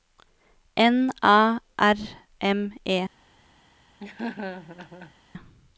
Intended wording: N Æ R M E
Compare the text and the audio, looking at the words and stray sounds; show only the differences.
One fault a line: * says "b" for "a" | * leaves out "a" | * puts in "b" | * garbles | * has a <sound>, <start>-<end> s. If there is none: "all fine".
* has a laugh, 4.0-5.1 s